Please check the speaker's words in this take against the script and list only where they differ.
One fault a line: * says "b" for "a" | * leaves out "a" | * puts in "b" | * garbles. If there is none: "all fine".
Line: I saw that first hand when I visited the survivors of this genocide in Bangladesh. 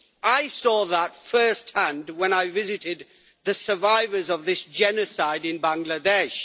all fine